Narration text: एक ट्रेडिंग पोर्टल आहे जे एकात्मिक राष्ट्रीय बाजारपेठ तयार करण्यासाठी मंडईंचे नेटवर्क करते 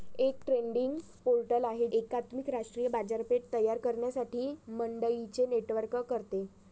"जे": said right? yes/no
no